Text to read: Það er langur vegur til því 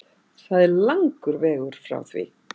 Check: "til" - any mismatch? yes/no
yes